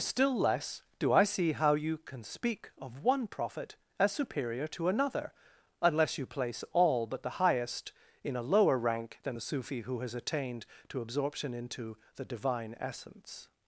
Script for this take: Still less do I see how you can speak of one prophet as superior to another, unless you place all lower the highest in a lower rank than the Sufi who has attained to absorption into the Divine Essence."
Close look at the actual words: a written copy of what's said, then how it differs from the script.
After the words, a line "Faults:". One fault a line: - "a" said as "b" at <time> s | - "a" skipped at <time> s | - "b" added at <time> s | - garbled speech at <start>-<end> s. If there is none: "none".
Still less do I see how you can speak of one prophet as superior to another, unless you place all but the highest in a lower rank than the Sufi who has attained to absorption into the Divine Essence."
Faults:
- "lower" said as "but" at 7.0 s